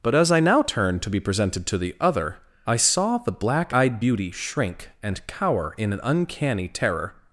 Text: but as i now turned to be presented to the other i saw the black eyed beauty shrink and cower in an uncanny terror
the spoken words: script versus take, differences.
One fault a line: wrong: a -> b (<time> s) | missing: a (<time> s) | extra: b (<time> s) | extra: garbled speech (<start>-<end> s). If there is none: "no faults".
no faults